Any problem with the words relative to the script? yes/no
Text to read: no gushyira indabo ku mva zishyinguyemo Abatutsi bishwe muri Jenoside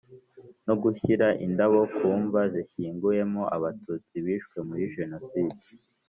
no